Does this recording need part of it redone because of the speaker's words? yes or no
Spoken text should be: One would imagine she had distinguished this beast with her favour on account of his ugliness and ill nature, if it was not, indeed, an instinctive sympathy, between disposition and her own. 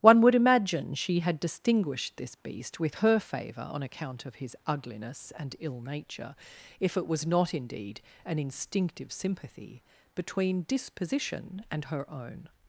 no